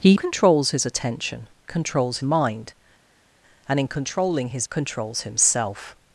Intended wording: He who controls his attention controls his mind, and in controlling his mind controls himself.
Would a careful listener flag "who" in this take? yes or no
yes